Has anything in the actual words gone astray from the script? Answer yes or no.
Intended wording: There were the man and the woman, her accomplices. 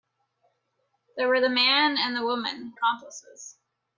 yes